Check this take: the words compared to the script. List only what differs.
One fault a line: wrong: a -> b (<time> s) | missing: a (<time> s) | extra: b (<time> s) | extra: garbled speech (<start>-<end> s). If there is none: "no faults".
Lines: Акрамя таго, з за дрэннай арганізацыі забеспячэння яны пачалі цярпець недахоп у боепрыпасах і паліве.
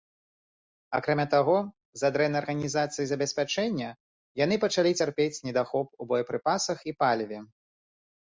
no faults